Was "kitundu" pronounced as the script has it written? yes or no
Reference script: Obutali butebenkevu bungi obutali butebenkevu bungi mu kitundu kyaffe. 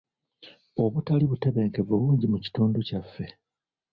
yes